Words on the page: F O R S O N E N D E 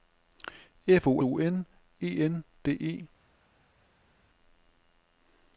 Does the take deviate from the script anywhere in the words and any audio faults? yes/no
yes